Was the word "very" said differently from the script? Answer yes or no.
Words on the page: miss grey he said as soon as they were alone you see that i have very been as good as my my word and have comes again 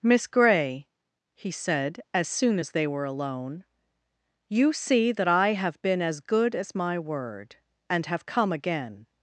yes